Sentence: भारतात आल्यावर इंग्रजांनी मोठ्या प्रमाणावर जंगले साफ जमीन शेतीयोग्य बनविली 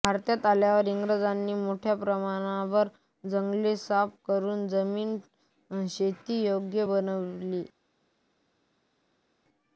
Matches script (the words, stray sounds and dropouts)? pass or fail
fail